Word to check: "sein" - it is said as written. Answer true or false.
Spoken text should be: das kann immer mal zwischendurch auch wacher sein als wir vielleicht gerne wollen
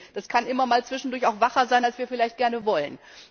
true